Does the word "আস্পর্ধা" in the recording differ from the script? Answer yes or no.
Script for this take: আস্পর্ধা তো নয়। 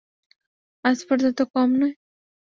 no